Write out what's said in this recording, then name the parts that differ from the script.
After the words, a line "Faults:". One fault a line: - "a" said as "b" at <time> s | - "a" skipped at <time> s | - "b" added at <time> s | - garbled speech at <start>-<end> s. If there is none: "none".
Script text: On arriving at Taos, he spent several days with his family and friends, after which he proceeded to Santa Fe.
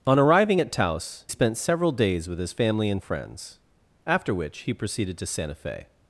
On arriving at Taos, spent several days with his family and friends, after which he proceeded to Santa Fe.
Faults:
- "he" skipped at 1.2 s